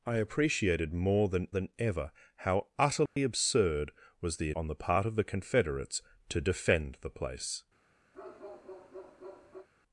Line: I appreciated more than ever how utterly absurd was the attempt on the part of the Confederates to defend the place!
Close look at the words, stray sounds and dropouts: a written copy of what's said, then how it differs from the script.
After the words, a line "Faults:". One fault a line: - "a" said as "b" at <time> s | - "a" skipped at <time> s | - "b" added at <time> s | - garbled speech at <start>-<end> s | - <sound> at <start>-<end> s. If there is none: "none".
I appreciated more than than ever how utterly absurd was the on the part of the Confederates to defend the place!
Faults:
- "than" added at 1.5 s
- dropout at 3.1-3.2 s
- "attempt" skipped at 4.5 s
- bark at 8.1-9.7 s